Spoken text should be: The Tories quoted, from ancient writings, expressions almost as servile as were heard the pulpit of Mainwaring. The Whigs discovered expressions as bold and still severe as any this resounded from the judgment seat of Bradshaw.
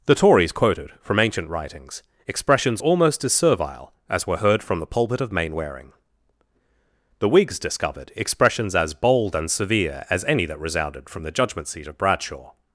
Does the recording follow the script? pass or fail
fail